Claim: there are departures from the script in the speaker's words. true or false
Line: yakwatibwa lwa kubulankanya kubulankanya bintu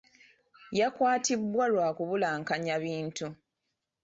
true